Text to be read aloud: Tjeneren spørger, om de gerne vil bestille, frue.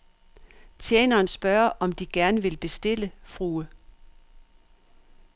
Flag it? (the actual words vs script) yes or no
no